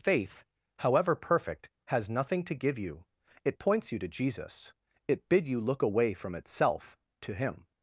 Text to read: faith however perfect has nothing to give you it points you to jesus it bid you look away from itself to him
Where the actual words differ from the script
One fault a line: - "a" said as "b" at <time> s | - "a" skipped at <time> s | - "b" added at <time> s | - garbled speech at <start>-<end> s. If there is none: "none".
none